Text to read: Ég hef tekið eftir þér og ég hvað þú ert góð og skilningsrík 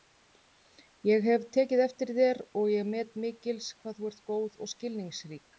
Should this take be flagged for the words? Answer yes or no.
yes